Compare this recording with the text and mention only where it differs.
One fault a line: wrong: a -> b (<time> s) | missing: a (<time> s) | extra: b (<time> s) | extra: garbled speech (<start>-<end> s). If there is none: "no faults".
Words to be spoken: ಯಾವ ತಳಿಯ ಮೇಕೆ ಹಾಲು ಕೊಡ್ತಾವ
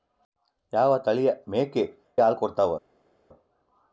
no faults